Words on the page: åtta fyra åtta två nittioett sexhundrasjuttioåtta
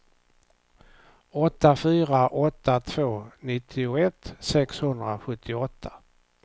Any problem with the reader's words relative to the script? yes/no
no